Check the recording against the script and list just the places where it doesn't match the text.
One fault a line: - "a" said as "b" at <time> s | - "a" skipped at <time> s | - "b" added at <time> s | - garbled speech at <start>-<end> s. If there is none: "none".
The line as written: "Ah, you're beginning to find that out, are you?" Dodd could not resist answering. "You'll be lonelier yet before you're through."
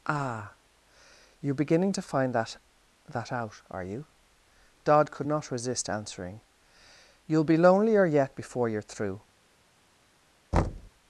- "that" added at 3.1 s